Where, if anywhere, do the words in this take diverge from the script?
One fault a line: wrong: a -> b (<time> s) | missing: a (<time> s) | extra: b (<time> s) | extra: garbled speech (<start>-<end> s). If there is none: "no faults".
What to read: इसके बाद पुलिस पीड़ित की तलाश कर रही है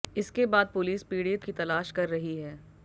no faults